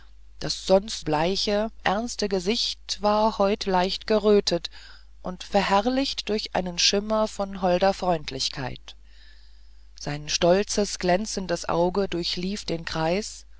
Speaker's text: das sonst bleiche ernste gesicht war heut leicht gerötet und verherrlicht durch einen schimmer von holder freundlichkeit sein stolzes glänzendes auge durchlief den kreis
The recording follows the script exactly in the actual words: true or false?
true